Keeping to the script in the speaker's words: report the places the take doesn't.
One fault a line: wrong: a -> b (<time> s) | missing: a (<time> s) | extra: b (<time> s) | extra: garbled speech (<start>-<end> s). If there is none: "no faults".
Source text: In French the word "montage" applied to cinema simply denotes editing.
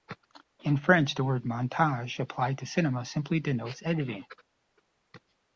no faults